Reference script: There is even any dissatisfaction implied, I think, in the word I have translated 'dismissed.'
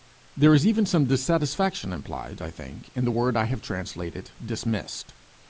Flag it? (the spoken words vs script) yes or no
yes